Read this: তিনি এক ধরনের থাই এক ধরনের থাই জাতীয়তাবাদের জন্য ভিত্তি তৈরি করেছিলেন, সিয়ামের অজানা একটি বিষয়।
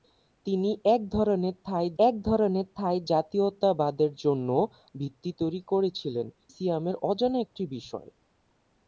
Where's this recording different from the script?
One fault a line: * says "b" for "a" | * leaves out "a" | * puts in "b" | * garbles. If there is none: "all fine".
all fine